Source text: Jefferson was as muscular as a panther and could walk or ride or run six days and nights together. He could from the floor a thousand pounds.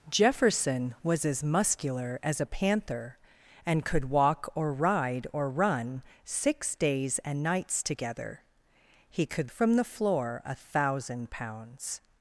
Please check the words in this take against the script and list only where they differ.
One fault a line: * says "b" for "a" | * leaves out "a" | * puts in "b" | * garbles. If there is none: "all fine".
all fine